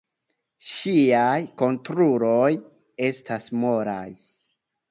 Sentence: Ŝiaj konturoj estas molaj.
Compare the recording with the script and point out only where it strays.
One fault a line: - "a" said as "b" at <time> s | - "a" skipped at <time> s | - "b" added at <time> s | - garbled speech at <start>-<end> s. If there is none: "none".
none